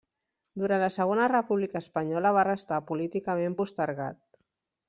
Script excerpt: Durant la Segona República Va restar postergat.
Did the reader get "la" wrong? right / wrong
right